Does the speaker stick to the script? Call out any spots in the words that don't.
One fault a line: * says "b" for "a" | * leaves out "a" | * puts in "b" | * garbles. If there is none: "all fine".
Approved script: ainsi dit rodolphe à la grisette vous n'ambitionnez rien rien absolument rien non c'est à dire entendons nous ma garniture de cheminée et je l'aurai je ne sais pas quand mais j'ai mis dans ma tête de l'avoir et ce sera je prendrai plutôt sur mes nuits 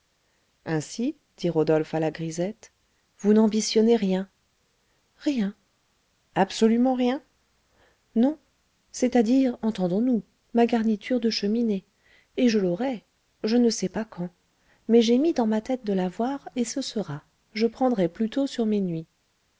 all fine